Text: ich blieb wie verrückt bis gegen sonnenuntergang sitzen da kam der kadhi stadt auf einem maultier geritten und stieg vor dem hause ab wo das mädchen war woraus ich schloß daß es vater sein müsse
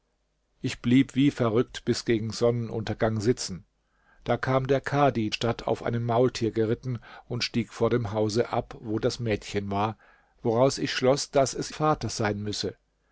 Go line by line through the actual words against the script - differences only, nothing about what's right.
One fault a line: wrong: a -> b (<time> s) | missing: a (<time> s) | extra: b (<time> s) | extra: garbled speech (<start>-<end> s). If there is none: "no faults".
no faults